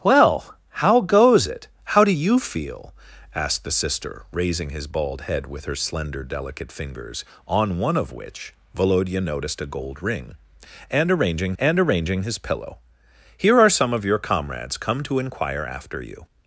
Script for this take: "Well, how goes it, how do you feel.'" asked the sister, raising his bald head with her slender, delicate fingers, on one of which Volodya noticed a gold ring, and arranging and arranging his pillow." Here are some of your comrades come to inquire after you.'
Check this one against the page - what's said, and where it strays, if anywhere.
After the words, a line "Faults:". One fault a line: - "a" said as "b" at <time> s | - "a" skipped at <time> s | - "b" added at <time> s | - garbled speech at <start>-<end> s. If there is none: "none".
"Well, how goes it, how do you feel.'" asked the sister, raising his bald head with her slender, delicate fingers, on one of which Volodya noticed a gold ring, and arranging and arranging his pillow." Here are some of your comrades come to inquire after you.'
Faults:
none